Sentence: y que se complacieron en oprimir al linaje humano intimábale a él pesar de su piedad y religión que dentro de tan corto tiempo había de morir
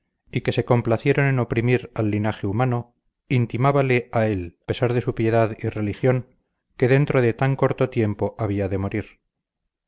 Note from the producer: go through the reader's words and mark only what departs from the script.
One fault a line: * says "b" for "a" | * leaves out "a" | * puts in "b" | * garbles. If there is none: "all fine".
all fine